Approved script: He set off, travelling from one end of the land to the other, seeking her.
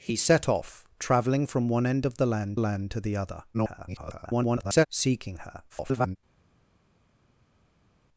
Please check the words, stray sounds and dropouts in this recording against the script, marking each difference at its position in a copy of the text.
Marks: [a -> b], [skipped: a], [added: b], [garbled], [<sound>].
He set off, travelling from one end of the land [added: land] to the other, [garbled] seeking her. [garbled]